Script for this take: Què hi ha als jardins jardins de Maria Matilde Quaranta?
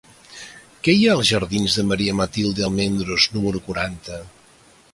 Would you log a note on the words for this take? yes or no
yes